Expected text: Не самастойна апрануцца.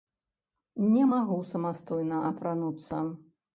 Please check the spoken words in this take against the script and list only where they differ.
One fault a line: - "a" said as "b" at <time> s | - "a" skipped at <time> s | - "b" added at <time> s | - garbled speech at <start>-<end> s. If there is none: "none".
- "магу" added at 1.1 s